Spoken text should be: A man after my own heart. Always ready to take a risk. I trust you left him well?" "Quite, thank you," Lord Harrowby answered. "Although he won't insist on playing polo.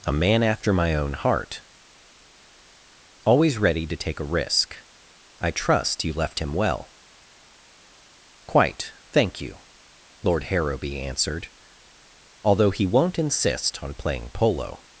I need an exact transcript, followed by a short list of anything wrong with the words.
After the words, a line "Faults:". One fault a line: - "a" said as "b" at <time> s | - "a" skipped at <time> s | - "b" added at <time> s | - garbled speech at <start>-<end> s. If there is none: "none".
A man after my own heart. Always ready to take a risk. I trust you left him well?" "Quite, thank you," Lord Harrowby answered. "Although he won't insist on playing polo.
Faults:
none